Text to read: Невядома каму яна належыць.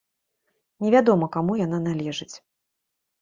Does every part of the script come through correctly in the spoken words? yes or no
yes